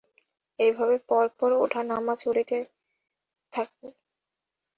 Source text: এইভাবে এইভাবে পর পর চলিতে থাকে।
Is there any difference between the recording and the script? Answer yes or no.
yes